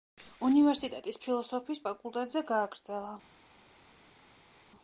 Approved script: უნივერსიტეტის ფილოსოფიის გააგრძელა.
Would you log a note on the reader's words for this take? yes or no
yes